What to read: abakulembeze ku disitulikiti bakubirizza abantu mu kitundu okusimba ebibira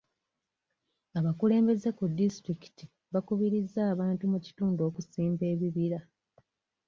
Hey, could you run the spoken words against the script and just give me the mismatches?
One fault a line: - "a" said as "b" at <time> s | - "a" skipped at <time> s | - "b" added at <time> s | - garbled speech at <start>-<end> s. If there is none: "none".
none